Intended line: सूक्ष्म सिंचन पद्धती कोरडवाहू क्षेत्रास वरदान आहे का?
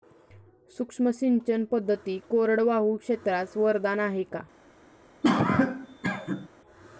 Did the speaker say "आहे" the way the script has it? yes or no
yes